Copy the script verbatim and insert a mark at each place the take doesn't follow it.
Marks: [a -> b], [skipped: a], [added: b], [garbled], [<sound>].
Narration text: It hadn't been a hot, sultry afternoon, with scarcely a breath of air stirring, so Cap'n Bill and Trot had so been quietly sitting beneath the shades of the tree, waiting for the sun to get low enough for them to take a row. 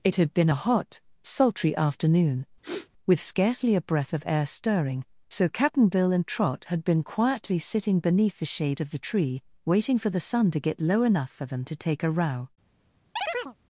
It [hadn't -> had] been a hot, sultry afternoon, [sniff] with scarcely a breath of air stirring, so Cap'n Bill and Trot had [skipped: so] been quietly sitting beneath the [shades -> shade] of the tree, waiting for the sun to get low enough for them to take a row. [chirp]